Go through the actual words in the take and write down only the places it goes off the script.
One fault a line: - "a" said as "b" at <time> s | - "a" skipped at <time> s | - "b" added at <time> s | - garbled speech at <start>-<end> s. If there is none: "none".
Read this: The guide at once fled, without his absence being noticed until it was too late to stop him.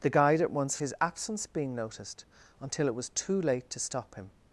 - "fled without" skipped at 0.8 s